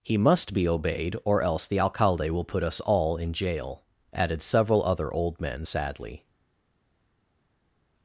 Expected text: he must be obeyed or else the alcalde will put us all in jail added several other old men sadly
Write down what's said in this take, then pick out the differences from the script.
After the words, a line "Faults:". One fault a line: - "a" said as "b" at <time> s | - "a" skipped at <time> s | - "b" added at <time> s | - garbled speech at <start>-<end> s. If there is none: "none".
he must be obeyed or else the alcalde will put us all in jail added several other old men sadly
Faults:
none